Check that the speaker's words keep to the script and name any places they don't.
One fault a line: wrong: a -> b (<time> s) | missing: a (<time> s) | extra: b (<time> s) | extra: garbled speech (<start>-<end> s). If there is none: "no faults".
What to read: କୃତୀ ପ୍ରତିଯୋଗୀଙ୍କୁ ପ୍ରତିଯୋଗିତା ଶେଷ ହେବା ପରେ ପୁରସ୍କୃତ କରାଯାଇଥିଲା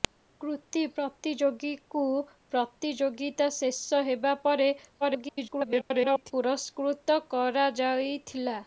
extra: garbled speech (5.0-6.3 s)